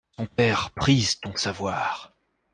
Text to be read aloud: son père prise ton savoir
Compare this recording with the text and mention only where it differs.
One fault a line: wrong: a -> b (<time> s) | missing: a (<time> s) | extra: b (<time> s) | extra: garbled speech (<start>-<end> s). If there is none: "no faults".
no faults